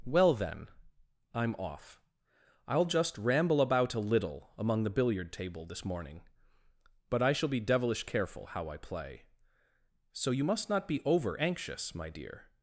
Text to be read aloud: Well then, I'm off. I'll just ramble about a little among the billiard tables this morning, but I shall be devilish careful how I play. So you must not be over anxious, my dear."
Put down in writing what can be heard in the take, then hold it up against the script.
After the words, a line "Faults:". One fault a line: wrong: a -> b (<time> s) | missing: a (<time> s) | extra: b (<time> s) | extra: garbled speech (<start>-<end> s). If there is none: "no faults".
Well then, I'm off. I'll just ramble about a little among the billiard table this morning, but I shall be devilish careful how I play. So you must not be over anxious, my dear."
Faults:
wrong: tables -> table (5.3 s)